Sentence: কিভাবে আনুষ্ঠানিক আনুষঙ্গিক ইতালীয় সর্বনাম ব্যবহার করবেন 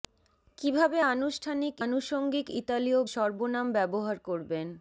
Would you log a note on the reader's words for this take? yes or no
no